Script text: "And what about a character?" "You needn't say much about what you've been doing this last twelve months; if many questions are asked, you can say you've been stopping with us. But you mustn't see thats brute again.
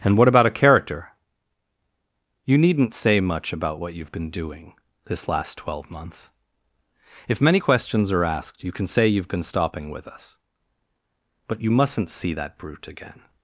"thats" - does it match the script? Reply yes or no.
no